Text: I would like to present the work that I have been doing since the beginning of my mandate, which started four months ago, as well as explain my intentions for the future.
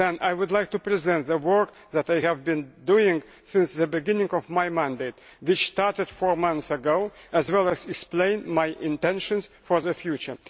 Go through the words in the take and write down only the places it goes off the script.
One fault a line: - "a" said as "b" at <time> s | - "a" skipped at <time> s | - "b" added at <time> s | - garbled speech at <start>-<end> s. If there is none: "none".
none